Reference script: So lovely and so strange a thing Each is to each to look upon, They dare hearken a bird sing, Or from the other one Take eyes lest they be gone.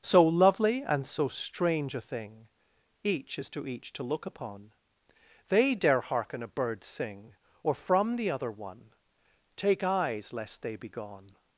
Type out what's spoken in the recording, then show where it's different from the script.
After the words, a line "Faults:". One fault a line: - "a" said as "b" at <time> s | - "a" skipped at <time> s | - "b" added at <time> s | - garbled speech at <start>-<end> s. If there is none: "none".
So lovely and so strange a thing Each is to each to look upon, They dare hearken a bird sing, Or from the other one Take eyes lest they be gone.
Faults:
none